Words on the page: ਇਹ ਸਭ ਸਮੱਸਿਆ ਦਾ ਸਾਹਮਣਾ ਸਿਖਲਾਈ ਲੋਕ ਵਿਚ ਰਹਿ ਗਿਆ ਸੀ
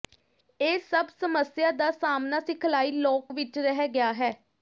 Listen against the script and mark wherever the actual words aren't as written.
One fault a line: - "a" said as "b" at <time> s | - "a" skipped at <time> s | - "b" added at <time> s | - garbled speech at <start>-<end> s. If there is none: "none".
- "ਸੀ" said as "ਹੈ" at 4.1 s